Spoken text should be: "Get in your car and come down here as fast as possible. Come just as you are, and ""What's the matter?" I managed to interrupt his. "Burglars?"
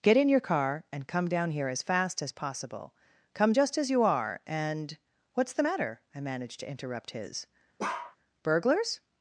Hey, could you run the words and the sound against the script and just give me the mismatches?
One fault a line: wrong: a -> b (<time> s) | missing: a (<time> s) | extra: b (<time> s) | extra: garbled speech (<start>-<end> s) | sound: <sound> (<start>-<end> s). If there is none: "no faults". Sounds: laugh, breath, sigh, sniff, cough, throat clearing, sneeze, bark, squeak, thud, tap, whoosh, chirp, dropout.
sound: bark (7.8-8.2 s)